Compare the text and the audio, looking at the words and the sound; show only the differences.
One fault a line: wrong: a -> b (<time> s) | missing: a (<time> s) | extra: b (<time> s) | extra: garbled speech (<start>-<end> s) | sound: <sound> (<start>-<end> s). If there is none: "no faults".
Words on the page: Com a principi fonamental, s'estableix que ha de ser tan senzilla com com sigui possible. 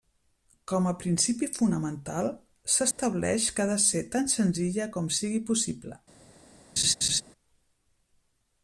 sound: dropout (2.9-3.0 s)
missing: com (5.1 s)
sound: laugh (6.8-7.2 s)